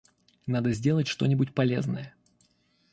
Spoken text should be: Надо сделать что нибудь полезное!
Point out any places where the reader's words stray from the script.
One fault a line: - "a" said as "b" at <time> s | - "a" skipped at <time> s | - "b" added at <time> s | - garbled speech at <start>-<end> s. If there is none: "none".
none